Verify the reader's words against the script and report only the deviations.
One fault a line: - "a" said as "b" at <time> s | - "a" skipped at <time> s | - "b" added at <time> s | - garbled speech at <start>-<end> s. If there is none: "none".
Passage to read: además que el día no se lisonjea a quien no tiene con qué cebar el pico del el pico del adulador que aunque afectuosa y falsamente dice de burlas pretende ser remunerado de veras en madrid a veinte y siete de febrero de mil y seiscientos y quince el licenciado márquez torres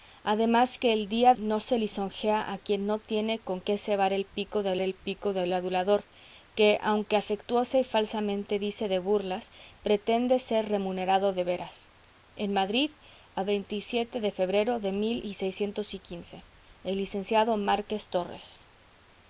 none